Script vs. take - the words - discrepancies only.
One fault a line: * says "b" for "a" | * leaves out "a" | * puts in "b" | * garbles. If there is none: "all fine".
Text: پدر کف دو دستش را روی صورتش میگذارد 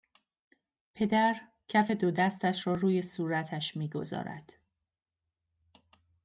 all fine